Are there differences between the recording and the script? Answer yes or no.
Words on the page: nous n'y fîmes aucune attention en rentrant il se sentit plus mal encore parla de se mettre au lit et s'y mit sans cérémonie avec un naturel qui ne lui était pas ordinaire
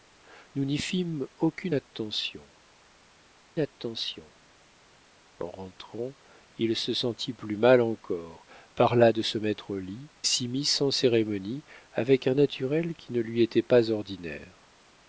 yes